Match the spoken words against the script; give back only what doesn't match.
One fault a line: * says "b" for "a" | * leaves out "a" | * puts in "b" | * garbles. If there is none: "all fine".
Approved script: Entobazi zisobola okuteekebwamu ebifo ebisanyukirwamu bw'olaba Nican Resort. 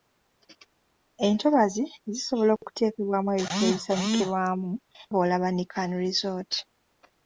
all fine